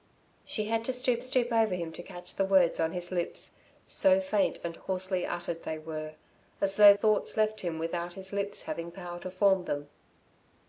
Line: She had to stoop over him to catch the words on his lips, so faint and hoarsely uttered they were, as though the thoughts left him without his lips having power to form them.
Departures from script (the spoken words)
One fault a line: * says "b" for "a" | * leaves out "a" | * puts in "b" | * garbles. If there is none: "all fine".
* puts in "stoop"
* leaves out "the"